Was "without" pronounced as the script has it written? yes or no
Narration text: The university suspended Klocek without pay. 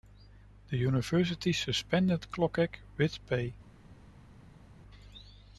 no